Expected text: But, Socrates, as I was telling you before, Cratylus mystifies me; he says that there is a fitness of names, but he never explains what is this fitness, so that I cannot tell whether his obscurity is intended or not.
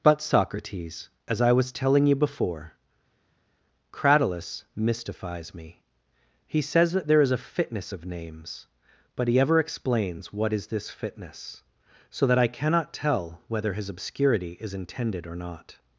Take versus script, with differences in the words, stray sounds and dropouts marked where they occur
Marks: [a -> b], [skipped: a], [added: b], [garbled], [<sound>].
But, Socrates, as I was telling you before, Cratylus mystifies me; he says that there is a fitness of names, but he [never -> ever] explains what is this fitness, so that I cannot tell whether his obscurity is intended or not.